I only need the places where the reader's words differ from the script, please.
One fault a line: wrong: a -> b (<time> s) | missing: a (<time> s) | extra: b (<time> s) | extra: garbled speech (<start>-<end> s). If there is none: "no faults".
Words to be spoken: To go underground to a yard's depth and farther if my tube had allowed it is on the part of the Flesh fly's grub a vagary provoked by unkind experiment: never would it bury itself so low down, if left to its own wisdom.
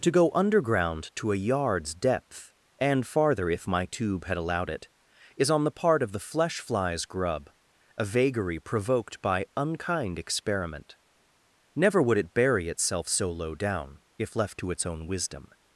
no faults